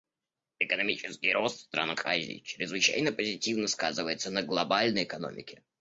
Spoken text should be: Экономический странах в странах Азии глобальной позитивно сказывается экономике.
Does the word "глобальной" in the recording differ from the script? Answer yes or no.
yes